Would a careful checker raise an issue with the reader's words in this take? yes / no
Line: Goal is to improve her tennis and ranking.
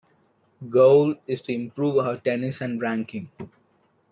no